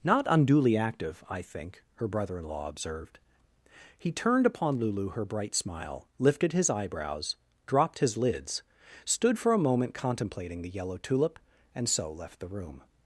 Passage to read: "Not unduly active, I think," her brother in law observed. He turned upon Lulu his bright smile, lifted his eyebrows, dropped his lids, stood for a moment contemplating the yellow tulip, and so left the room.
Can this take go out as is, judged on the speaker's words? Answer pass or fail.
fail